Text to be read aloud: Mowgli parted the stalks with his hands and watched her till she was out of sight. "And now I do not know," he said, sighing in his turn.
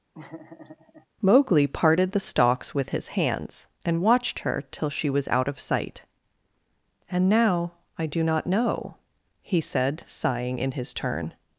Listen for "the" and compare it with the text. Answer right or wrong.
right